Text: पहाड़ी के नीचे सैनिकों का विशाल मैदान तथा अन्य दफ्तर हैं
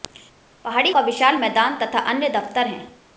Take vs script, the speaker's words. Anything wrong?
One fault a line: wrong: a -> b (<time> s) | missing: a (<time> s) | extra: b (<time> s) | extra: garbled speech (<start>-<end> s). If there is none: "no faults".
missing: के नीचे सैनिकों (0.9 s)